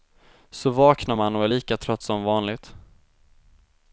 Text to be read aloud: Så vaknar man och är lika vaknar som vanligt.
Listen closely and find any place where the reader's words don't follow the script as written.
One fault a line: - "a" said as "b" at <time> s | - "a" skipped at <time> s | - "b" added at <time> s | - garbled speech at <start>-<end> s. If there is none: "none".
- "vaknar" said as "trött" at 1.8 s